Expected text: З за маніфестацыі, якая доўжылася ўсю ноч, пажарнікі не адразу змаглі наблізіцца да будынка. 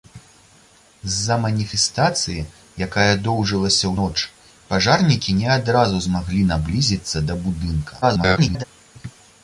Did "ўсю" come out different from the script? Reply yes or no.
yes